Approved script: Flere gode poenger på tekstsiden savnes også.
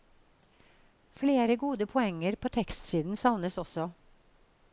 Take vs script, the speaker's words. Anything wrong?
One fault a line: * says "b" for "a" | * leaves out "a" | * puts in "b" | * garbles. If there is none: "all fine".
all fine